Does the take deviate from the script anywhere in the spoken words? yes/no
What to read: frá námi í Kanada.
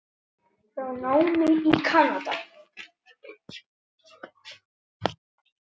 no